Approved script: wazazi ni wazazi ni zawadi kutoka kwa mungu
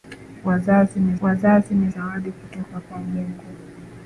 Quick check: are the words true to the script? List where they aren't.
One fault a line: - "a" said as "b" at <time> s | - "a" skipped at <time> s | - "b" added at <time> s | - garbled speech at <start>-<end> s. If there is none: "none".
none